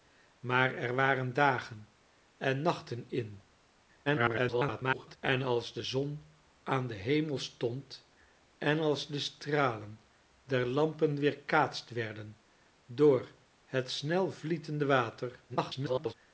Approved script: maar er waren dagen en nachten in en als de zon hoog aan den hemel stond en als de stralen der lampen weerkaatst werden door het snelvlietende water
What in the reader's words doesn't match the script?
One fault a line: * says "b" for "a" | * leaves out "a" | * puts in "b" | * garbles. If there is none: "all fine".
* garbles
* leaves out "hoog"
* garbles